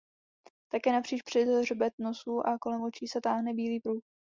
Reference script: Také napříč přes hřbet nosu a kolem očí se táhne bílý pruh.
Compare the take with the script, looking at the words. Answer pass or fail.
pass